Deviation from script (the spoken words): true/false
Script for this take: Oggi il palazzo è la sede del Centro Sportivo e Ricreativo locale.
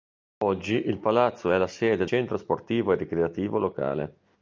true